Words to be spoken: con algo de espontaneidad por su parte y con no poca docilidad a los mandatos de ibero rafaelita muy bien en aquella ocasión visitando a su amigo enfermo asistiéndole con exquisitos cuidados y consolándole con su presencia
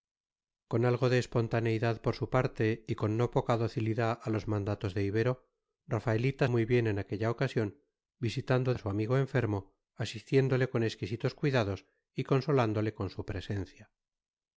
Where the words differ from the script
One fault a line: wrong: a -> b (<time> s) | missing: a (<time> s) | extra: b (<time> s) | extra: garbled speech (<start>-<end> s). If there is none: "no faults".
no faults